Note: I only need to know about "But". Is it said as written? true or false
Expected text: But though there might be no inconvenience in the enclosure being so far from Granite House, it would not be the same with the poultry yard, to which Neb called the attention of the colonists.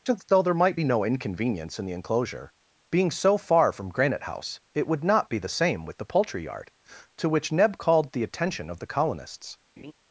false